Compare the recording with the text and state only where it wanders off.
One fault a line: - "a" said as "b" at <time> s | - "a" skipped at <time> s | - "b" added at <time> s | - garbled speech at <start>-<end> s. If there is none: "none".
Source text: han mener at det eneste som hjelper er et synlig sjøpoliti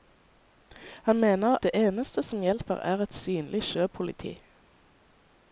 - "at" skipped at 1.6 s